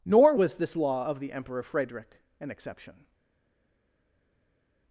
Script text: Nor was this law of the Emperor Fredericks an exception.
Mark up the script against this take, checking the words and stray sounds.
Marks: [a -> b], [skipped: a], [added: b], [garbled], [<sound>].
Nor was this law of the Emperor [Fredericks -> Frederick] an exception.